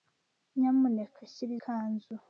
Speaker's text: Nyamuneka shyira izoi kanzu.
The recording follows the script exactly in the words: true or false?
false